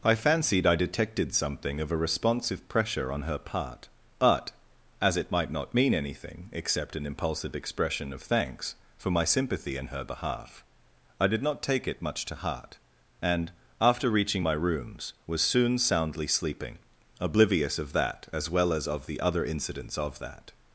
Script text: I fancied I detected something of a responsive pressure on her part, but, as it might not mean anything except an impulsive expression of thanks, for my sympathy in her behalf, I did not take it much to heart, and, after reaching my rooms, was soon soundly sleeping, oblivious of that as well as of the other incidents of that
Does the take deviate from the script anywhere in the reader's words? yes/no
no